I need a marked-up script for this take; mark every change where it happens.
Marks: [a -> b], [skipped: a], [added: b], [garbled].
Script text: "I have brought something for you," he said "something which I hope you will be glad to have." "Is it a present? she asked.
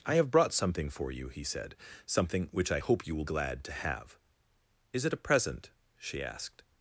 "I have brought something for you," he said "something which I hope you will [skipped: be] glad to have." "Is it a present? she asked.